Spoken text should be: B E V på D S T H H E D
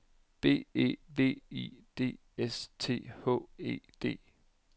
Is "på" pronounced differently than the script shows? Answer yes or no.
yes